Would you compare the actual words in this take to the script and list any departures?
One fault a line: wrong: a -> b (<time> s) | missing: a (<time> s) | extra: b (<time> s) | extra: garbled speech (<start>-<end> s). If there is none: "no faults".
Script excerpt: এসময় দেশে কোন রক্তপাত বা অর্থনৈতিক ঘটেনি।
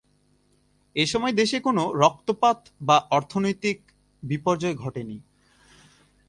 extra: বিপর্যয় (4.2 s)